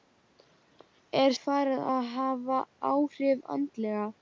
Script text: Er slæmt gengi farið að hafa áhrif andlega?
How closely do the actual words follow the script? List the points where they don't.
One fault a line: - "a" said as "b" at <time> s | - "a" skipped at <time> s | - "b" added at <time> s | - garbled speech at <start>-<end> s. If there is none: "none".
- "slæmt gengi" skipped at 1.4 s